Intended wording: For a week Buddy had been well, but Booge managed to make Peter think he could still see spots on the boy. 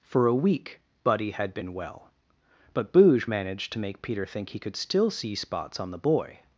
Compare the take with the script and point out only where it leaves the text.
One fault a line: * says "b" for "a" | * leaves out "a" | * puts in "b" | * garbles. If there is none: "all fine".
all fine